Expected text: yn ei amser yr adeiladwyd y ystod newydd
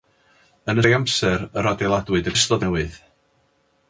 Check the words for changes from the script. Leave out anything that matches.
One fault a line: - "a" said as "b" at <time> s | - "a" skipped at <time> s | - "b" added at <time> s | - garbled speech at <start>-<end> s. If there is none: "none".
none